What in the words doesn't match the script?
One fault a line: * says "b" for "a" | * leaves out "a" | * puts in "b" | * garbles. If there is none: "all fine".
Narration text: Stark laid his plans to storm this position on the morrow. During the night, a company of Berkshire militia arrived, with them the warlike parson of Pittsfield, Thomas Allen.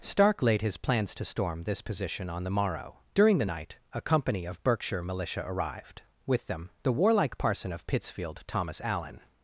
all fine